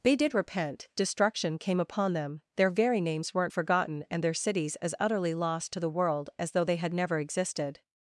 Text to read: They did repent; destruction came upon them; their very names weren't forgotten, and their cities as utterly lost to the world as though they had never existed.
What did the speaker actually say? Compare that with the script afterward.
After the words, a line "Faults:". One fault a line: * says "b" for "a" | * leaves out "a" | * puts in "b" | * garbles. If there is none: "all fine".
They did repent; destruction came upon them; their very names weren't forgotten, and their cities as utterly lost to the world as though they had never existed.
Faults:
all fine